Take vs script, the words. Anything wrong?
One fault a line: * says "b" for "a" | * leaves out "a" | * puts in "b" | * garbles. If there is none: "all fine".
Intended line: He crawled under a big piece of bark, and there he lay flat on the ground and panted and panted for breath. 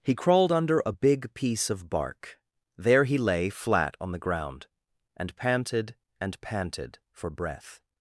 * leaves out "and"